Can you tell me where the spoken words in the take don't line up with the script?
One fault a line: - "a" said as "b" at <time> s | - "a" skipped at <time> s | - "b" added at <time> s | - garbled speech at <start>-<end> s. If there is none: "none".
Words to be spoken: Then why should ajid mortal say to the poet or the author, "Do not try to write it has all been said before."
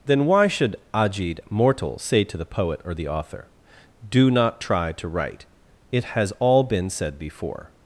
none